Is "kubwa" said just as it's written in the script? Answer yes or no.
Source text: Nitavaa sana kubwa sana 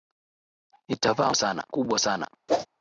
yes